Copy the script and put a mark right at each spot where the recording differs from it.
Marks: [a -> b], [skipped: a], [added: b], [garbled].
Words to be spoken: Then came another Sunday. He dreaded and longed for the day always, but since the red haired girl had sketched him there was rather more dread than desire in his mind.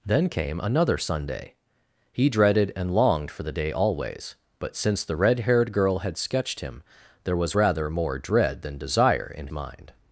Then came another Sunday. He dreaded and longed for the day always, but since the red haired girl had sketched him there was rather more dread than desire in [skipped: his] mind.